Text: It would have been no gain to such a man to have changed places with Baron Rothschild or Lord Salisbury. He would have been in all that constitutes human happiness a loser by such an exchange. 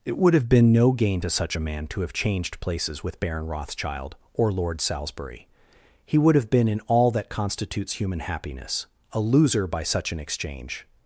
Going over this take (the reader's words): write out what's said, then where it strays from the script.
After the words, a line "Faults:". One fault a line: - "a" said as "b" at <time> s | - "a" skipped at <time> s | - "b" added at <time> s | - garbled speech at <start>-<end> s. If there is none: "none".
It would have been no gain to such a man to have changed places with Baron Rothschild or Lord Salisbury. He would have been in all that constitutes human happiness a loser by such an exchange.
Faults:
none